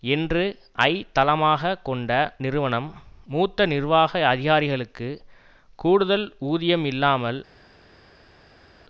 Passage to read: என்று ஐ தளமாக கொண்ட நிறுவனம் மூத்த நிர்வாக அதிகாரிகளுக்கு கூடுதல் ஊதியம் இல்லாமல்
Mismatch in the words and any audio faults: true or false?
false